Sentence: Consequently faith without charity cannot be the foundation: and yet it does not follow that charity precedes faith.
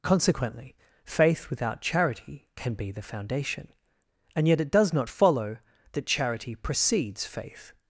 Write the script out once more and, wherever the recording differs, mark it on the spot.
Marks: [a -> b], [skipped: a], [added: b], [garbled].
Consequently faith without charity [cannot -> can] be the foundation: and yet it does not follow that charity precedes faith.